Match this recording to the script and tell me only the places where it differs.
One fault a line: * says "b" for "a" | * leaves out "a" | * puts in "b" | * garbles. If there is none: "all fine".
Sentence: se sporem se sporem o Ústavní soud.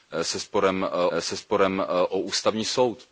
all fine